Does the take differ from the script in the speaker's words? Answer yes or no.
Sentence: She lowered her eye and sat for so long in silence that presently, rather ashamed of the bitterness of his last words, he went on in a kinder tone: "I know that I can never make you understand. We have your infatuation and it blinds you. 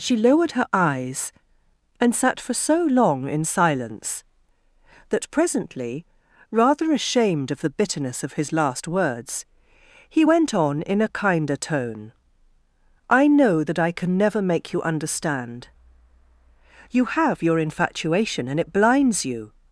yes